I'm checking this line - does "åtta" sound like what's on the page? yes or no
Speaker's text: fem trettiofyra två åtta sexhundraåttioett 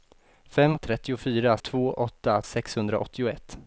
yes